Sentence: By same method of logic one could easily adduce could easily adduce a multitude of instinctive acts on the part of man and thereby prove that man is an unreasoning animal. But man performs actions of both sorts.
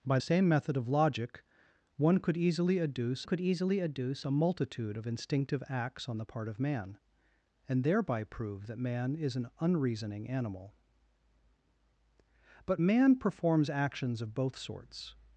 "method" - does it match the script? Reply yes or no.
yes